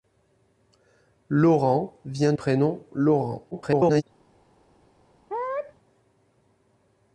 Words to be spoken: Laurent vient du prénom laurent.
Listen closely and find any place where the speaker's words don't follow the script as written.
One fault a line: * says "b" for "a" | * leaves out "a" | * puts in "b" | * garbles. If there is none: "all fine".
* leaves out "du"
* garbles